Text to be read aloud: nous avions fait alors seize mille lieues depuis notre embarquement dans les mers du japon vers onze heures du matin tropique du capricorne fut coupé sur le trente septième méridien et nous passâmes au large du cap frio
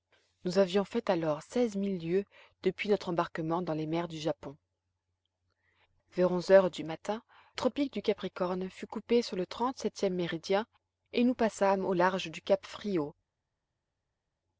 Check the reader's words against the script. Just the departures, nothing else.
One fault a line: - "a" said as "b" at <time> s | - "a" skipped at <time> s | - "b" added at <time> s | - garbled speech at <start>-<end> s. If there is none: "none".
none